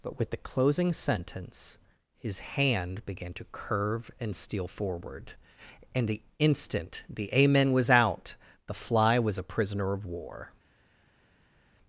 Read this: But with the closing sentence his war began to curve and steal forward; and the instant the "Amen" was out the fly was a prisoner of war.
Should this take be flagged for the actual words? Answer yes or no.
yes